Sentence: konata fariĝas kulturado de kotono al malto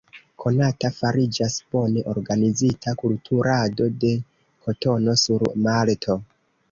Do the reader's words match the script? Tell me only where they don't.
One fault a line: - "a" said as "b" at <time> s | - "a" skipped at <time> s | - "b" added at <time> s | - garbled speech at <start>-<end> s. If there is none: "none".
- "bone organizita" added at 1.8 s
- "al" said as "sur" at 5.2 s